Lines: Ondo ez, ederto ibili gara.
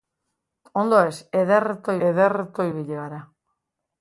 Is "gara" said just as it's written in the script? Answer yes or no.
yes